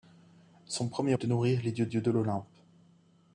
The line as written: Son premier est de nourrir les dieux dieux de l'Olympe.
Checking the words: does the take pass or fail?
pass